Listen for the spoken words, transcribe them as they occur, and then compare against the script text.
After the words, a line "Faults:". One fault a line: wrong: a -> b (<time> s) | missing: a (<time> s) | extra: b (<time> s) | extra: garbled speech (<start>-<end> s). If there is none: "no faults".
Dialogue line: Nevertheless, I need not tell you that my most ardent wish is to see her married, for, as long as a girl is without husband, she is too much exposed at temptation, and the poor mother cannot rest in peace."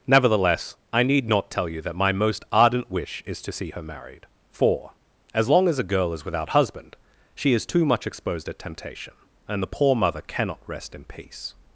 Nevertheless, I need not tell you that my most ardent wish is to see her married, for, as long as a girl is without husband, she is too much exposed at temptation, and the poor mother cannot rest in peace."
Faults:
no faults